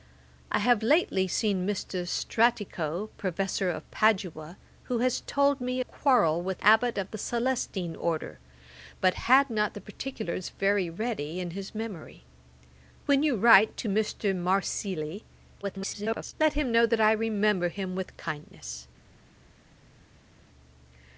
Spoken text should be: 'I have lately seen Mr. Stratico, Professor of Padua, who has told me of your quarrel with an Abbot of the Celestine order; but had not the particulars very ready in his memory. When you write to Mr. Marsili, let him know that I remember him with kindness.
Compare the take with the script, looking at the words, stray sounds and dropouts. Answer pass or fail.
fail